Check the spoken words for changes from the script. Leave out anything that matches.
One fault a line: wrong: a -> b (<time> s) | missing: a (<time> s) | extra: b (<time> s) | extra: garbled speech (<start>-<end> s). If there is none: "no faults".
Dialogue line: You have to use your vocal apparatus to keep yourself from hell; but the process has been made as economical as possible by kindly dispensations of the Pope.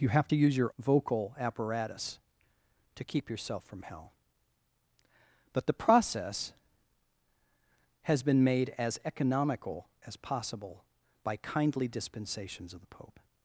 no faults